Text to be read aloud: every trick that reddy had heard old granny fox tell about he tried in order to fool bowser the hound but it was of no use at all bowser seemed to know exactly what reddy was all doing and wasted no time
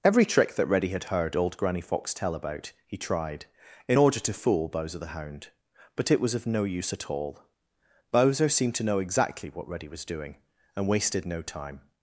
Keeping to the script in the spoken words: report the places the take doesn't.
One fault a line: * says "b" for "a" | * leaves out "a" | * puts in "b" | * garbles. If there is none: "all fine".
* leaves out "all"